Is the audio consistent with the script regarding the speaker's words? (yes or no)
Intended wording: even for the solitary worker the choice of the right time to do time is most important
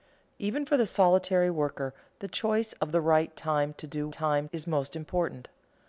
yes